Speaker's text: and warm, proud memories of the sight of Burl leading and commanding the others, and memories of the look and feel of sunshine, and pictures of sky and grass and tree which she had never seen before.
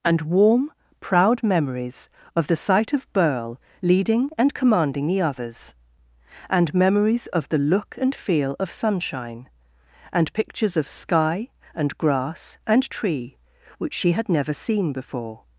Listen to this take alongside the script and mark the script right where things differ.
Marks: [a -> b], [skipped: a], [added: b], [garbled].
and warm, proud memories of the sight of Burl leading and commanding the others, and memories of the look and feel of sunshine, and pictures of sky and grass and tree which she had never seen before.